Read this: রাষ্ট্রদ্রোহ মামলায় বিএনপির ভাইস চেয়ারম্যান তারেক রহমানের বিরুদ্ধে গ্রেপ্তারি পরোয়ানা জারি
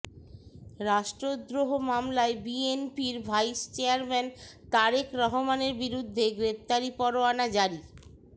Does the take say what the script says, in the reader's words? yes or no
yes